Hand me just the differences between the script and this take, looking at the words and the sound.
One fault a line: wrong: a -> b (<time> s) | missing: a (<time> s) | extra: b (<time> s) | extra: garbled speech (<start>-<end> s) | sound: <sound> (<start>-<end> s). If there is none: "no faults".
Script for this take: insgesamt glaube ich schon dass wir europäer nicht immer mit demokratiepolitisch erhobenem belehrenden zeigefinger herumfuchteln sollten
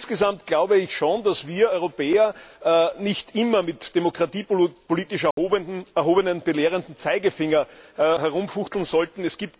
sound: dropout (5.3-5.4 s)